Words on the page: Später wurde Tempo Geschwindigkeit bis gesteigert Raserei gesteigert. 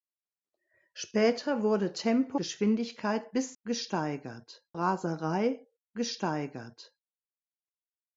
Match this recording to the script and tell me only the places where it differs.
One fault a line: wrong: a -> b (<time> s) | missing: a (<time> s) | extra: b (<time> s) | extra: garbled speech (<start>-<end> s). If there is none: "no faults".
no faults